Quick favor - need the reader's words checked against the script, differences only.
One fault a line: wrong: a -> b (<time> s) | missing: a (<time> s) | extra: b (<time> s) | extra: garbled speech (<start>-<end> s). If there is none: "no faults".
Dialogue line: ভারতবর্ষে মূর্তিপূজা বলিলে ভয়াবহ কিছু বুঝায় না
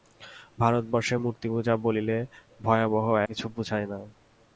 no faults